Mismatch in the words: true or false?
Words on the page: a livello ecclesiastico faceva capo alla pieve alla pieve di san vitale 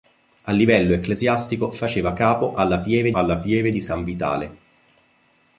false